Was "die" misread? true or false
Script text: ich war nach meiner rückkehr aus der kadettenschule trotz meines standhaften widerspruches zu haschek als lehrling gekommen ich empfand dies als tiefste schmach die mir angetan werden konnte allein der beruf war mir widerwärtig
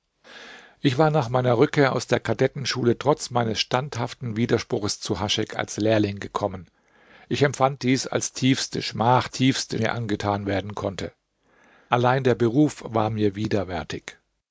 true